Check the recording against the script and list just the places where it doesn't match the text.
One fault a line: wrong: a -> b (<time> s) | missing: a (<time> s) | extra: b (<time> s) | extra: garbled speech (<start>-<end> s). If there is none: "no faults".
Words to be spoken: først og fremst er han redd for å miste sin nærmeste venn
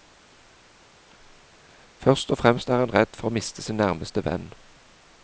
no faults